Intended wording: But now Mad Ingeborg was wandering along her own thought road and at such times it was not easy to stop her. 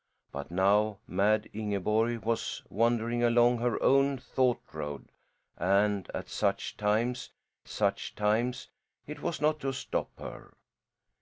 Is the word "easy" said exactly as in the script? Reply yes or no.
no